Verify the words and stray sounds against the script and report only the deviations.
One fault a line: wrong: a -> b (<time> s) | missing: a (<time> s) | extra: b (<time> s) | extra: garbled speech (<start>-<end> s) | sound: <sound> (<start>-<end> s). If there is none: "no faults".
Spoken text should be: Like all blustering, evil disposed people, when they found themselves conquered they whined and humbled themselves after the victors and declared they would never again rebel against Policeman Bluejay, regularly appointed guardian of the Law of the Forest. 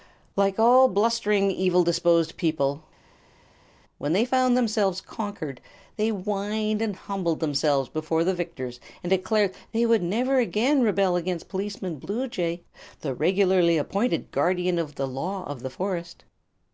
wrong: after -> before (7.9 s)
extra: the (13.0 s)